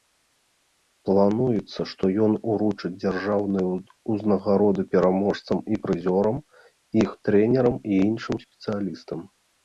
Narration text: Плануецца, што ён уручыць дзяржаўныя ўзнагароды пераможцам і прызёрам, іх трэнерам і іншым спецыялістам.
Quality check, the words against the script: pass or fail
pass